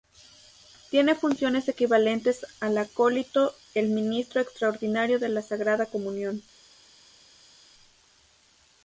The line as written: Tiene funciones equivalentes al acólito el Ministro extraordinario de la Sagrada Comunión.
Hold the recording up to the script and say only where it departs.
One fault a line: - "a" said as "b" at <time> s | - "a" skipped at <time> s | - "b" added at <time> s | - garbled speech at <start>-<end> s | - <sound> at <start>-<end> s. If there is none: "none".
none